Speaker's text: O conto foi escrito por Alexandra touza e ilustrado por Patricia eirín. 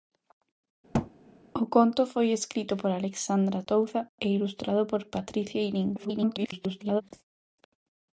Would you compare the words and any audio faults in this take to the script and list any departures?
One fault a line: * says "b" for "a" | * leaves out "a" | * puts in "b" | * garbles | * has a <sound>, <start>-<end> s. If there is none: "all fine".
* has a thud, 0.9-1.1 s
* garbles